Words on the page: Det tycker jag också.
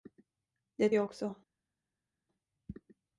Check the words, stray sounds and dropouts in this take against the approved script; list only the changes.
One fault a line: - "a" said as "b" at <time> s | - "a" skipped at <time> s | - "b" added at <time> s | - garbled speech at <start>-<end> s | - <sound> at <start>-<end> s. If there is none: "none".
- "tycker" skipped at 0.9 s